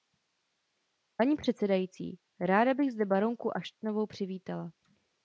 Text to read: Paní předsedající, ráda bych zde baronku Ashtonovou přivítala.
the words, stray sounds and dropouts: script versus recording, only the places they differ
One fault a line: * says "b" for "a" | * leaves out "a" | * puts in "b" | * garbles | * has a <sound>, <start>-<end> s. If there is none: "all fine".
all fine